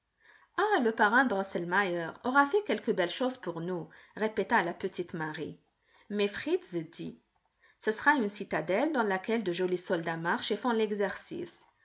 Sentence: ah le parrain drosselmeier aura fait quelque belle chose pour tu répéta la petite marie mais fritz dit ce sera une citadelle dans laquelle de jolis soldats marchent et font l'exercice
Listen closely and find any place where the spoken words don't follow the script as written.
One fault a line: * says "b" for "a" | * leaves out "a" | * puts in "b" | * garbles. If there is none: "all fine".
* says "nous" for "tu"